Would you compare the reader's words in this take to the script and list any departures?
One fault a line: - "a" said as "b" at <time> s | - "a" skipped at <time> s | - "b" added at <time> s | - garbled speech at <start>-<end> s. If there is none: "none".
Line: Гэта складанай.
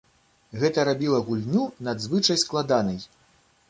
- "рабіла гульню надзвычай" added at 0.9 s